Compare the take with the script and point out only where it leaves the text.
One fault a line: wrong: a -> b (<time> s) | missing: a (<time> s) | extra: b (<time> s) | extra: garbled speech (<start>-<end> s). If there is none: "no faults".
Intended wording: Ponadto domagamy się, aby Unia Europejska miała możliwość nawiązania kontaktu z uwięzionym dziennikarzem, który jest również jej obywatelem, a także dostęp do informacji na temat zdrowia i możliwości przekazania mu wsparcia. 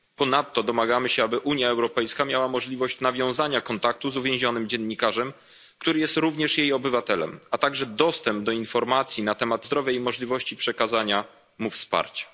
no faults